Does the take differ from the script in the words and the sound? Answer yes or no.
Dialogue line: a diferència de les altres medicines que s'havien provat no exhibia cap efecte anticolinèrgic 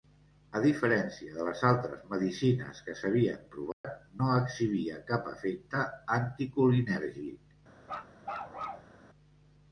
yes